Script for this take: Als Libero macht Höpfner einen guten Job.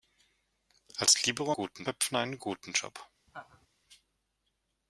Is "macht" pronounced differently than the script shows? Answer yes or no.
yes